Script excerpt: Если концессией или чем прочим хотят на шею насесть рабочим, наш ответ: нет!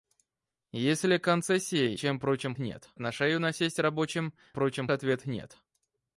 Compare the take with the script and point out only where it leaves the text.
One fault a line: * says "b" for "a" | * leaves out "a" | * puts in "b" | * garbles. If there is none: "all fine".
* leaves out "или"
* says "нет" for "хотят"
* says "прочим" for "наш"